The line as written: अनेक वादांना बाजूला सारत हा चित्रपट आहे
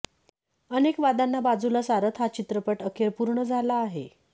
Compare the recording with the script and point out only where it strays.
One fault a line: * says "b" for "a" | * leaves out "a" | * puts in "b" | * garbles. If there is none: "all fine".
* puts in "अखेर पूर्ण झाला"